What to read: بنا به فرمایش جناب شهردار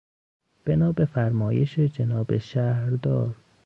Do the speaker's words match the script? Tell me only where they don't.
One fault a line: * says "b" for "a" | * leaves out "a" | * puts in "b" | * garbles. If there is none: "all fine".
all fine